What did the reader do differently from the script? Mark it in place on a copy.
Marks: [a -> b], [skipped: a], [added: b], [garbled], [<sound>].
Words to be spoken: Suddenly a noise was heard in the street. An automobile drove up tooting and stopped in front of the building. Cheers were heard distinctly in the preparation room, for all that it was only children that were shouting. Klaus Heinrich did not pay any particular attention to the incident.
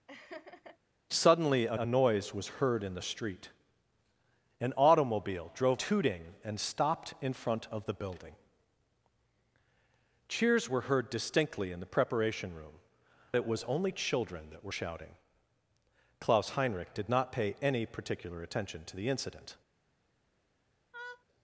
[laugh] Suddenly a [added: a] noise was heard in the street. An automobile drove [skipped: up] tooting and stopped in front of the building. Cheers were heard distinctly in the preparation room, [skipped: for all that] it was only children that were shouting. Klaus Heinrich did not pay any particular attention to the incident. [laugh]